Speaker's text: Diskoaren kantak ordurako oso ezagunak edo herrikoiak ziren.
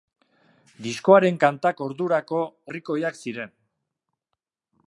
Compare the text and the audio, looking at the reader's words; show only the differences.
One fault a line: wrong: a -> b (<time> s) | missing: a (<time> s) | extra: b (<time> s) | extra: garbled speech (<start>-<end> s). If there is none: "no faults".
missing: oso ezagunak edo (2.4 s)